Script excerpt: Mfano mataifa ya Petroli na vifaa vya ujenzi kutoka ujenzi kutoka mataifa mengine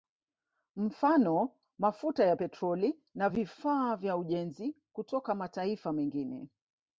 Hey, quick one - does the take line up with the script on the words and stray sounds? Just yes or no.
no